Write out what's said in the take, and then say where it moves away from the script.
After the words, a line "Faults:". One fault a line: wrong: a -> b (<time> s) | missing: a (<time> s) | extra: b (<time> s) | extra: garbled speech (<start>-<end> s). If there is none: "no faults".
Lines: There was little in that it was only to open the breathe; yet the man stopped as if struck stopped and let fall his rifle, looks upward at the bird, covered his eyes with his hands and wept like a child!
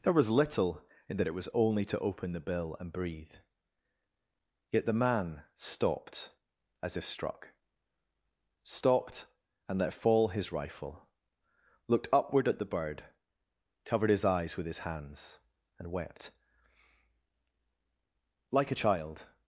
There was little in that it was only to open the bill and breathe; yet the man stopped as if struck stopped and let fall his rifle, looked upward at the bird, covered his eyes with his hands and wept like a child!
Faults:
extra: bill and (2.4 s)
wrong: looks -> looked (11.9 s)